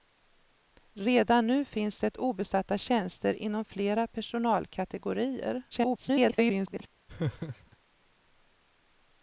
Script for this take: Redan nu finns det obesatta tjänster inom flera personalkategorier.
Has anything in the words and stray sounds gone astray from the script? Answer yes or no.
yes